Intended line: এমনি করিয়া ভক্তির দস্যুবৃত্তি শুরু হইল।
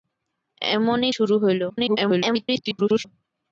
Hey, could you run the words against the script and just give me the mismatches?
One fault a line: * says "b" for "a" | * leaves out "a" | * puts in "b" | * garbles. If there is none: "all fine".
* leaves out "করিয়া ভক্তির দস্যুবৃত্তি"
* garbles